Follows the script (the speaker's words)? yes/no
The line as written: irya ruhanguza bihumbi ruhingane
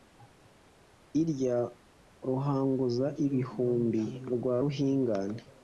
no